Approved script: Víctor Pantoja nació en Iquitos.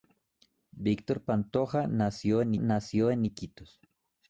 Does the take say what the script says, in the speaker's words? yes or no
no